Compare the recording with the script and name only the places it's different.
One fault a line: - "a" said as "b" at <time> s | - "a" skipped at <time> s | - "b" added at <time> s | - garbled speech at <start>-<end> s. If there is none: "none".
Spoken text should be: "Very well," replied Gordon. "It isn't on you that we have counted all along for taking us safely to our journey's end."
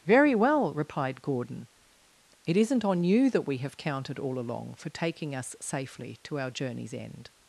none